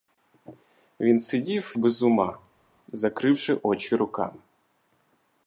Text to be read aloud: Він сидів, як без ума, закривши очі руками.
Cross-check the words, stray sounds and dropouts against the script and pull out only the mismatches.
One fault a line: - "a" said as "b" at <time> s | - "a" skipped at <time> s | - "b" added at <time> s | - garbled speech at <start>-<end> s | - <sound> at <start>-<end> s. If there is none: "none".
- "як" skipped at 1.7 s